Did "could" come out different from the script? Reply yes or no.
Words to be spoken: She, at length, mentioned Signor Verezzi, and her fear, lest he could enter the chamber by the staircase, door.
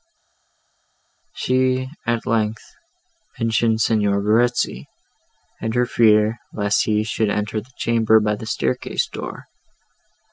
yes